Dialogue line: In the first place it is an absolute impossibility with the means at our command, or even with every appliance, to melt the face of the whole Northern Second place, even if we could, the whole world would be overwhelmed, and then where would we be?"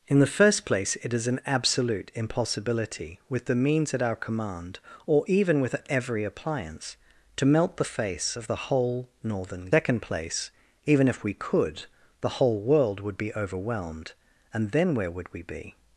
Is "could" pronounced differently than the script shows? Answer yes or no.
no